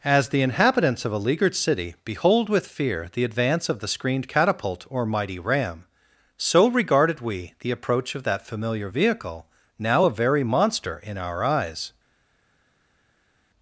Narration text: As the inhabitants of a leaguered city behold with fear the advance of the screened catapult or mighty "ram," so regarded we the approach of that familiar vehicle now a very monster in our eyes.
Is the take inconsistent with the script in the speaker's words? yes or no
no